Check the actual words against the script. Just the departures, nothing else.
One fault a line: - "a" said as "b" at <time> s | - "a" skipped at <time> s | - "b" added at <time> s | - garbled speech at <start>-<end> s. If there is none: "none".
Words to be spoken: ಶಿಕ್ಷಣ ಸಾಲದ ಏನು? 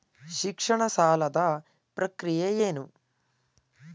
- "ಪ್ರಕ್ರಿಯೆ" added at 2.0 s